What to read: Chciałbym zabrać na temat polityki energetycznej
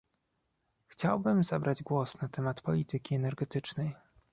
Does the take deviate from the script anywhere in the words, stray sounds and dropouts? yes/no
yes